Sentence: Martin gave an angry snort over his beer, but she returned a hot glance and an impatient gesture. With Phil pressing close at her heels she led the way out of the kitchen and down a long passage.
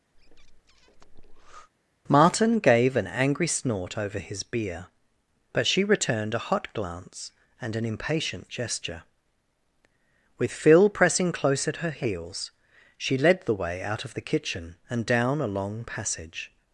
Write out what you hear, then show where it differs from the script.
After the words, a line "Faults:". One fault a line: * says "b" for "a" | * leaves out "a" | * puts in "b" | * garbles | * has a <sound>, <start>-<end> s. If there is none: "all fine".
Martin gave an angry snort over his beer, but she returned a hot glance and an impatient gesture. With Phil pressing close at her heels she led the way out of the kitchen and down a long passage.
Faults:
* has a breath, 0.1-1.7 s